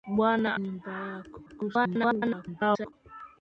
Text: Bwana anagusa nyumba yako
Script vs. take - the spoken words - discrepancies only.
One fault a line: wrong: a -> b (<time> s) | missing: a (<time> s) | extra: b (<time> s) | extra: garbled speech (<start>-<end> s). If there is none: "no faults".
missing: anagusa (0.5 s)
extra: garbled speech (1.5-2.9 s)